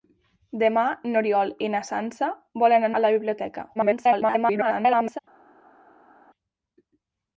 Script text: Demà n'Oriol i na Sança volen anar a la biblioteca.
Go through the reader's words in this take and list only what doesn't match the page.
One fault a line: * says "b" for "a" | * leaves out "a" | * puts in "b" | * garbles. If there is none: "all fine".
* leaves out "anar"
* garbles